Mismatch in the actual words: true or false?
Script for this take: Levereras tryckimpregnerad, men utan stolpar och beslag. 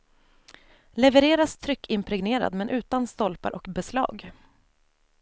false